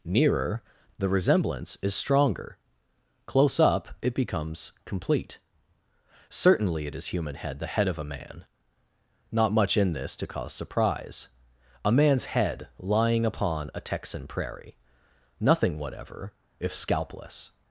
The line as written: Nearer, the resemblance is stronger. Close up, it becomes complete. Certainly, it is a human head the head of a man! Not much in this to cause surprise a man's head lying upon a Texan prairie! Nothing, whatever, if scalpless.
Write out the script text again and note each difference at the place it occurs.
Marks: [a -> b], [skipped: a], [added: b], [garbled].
Nearer, the resemblance is stronger. Close up, it becomes complete. Certainly, it is [skipped: a] human head the head of a man! Not much in this to cause surprise a man's head lying upon a Texan prairie! Nothing, whatever, if scalpless.